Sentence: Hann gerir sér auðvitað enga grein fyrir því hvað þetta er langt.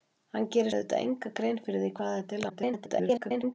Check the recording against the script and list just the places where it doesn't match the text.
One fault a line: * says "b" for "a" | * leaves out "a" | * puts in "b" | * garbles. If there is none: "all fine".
* leaves out "sér"
* garbles